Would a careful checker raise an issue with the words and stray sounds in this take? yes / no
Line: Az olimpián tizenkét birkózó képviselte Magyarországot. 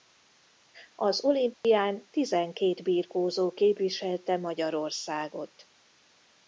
yes